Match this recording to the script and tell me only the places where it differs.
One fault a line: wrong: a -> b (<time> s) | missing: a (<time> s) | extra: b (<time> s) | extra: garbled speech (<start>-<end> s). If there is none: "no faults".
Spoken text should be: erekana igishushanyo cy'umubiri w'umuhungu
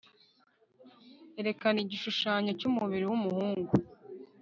no faults